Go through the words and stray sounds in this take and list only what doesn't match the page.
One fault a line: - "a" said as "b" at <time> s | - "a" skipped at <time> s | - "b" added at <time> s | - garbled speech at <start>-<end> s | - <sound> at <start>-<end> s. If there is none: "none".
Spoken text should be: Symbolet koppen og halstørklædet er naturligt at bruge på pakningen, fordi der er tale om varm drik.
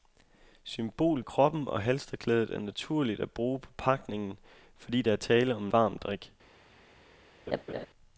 - laugh at 7.5-7.9 s